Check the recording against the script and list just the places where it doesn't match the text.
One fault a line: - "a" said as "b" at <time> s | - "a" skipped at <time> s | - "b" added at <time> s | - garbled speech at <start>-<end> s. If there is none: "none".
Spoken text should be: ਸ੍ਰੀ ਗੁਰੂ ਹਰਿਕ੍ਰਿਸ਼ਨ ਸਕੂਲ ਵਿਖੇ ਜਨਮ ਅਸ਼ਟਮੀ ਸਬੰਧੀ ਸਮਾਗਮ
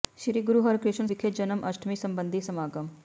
- "ਸਕੂਲ" skipped at 1.1 s